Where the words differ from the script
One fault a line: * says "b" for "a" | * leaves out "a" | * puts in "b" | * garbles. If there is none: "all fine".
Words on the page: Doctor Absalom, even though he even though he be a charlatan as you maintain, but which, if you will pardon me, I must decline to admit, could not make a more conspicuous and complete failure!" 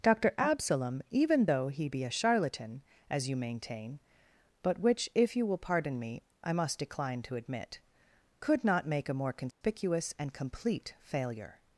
* leaves out "even though he"